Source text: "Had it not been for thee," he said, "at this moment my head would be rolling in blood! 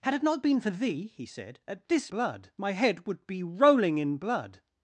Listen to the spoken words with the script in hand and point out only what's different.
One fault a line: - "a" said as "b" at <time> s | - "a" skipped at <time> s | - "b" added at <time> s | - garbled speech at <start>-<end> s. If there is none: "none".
- "moment" said as "blood" at 2.1 s